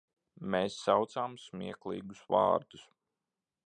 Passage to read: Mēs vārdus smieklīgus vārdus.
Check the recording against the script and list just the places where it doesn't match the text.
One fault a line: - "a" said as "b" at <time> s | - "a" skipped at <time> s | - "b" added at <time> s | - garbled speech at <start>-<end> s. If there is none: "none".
- "vārdus" said as "saucām" at 0.8 s